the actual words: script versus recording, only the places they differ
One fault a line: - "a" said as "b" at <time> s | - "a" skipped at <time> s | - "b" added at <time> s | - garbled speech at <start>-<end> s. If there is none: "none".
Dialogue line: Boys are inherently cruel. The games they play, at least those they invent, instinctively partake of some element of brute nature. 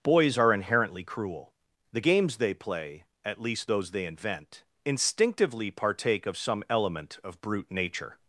none